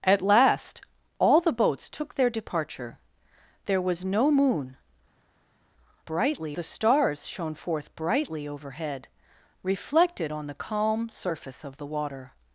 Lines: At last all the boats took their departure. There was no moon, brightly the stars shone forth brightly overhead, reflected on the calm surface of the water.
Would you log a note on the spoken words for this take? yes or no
no